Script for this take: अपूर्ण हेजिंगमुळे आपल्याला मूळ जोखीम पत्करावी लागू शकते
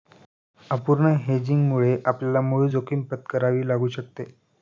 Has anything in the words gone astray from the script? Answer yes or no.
no